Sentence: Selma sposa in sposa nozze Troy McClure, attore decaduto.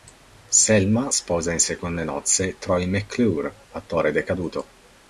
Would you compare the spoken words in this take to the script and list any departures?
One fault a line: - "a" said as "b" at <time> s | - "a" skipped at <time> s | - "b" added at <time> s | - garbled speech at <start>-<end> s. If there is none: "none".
- "sposa" said as "seconde" at 1.6 s